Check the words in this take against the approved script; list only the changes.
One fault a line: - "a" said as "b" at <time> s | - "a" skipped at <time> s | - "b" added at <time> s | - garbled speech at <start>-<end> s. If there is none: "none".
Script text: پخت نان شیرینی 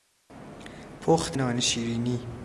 none